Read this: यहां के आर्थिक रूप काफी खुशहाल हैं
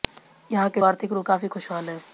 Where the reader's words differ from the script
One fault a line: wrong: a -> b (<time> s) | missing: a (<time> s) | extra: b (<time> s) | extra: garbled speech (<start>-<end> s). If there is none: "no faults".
no faults